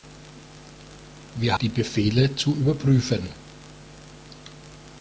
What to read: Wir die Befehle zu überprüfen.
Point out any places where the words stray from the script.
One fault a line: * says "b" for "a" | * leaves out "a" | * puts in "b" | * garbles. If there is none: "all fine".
all fine